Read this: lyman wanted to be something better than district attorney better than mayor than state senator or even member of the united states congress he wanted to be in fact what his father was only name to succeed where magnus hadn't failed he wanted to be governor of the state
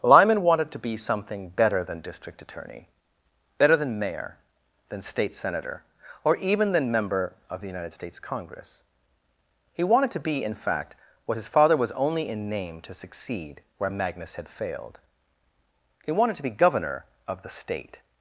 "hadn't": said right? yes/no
no